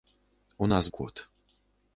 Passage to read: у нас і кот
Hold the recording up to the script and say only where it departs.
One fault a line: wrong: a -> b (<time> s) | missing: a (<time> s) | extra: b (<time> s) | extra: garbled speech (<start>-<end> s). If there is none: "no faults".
no faults